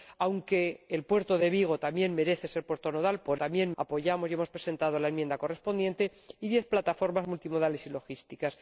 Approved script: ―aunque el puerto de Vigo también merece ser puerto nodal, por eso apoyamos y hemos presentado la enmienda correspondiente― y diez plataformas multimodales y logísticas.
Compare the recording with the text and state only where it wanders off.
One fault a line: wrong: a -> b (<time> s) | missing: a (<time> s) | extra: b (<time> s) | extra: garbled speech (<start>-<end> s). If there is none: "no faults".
wrong: eso -> también (3.4 s)